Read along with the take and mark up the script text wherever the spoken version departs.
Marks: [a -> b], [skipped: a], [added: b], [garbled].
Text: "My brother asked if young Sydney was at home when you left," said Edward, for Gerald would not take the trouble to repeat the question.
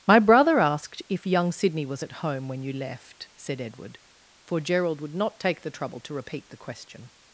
"My brother asked if young Sydney was at home when you left," said Edward, for Gerald would not take the trouble to repeat the question.